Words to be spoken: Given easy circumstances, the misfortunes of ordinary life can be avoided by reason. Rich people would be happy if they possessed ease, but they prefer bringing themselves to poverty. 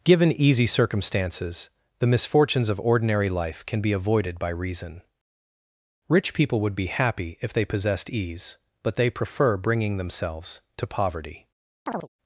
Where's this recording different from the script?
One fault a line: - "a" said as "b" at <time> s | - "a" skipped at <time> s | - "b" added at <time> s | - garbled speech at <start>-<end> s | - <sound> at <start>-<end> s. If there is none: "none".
- chirp at 11.9-12.1 s